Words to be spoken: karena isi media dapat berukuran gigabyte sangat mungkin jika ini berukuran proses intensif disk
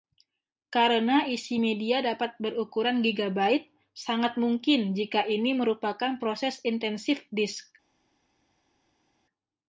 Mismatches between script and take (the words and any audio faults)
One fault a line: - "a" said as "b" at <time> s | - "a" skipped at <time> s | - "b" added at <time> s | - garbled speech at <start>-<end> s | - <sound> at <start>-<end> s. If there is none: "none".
- "berukuran" said as "merupakan" at 5.5 s